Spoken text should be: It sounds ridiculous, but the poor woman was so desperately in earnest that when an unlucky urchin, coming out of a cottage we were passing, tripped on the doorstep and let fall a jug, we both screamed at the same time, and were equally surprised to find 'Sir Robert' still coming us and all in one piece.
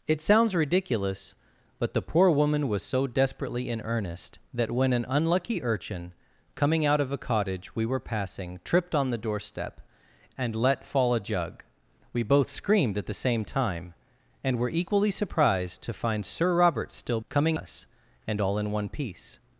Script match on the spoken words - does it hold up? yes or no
yes